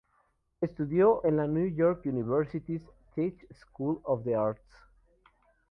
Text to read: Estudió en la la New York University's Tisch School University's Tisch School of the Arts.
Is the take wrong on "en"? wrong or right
right